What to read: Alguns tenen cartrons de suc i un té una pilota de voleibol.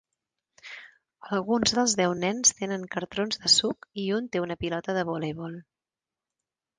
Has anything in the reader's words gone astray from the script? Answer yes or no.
yes